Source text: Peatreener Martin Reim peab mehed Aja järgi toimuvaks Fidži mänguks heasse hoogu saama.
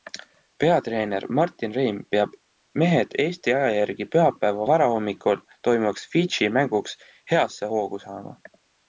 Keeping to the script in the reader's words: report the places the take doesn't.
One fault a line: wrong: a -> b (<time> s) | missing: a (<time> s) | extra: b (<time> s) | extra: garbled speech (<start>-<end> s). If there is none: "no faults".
extra: Eesti (3.2 s)
extra: pühapäeva varahommikul (4.1 s)